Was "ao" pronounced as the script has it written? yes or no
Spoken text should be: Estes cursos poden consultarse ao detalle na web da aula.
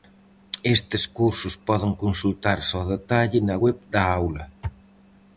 yes